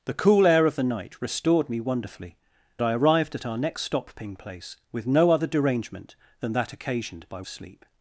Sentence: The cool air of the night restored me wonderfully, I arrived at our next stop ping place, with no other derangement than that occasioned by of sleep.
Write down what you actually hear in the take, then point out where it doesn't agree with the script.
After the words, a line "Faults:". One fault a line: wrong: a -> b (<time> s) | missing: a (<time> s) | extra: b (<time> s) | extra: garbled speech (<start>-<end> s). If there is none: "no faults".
The cool air of the night restored me wonderfully, I arrived at our next stop ping place, with no other derangement than that occasioned by of sleep.
Faults:
no faults